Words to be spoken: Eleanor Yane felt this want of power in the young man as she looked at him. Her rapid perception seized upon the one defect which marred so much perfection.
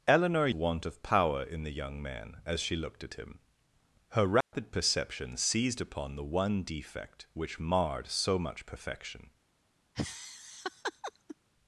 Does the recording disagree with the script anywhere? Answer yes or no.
yes